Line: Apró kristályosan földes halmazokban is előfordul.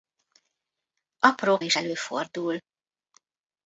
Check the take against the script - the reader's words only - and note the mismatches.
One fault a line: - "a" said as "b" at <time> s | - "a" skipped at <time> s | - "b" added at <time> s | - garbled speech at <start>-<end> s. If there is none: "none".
- "kristályosan földes halmazokban" skipped at 1.6 s